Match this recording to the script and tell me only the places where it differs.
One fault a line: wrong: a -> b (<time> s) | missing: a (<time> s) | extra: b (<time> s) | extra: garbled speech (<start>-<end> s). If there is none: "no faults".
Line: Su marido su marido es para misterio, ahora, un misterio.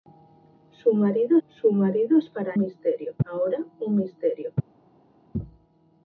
no faults